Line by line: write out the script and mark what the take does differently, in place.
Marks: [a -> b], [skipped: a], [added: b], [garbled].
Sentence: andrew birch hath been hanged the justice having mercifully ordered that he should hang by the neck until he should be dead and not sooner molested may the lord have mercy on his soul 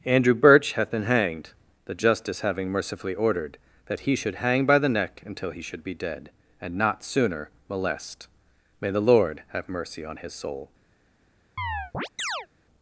andrew birch hath been hanged the justice having mercifully ordered that he should hang by the neck until he should be dead and not sooner [molested -> molest] may the lord have mercy on his soul